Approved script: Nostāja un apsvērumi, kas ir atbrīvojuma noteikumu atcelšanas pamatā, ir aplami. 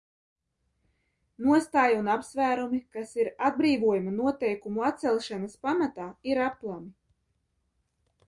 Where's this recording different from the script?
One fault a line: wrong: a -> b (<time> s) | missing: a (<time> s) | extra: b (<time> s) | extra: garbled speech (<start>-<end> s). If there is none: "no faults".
no faults